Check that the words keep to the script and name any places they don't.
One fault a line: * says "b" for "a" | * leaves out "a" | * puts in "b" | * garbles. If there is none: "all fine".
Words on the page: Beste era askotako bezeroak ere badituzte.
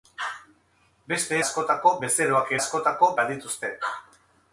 * leaves out "era"
* says "askotako" for "ere"